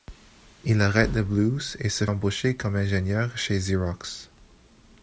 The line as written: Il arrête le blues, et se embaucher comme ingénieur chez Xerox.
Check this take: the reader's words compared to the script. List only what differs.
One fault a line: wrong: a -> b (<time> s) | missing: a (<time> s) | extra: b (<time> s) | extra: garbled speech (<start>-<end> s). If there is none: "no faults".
no faults